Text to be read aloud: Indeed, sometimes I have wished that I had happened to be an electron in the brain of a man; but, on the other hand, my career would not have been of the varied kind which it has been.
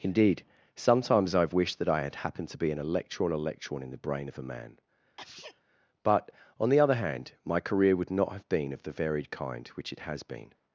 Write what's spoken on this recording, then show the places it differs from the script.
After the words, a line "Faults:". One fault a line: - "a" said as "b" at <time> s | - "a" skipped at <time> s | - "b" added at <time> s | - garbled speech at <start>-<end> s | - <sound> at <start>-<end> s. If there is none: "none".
Indeed, sometimes I have wished that I had happened to be an electron electron in the brain of a man; but, on the other hand, my career would not have been of the varied kind which it has been.
Faults:
- "electron" added at 3.3 s
- sneeze at 5.2-5.6 s